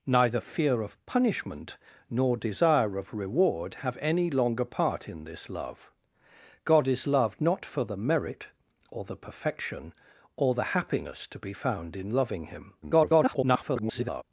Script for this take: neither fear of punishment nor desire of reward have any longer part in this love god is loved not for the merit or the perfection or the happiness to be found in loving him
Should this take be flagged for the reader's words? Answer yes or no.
yes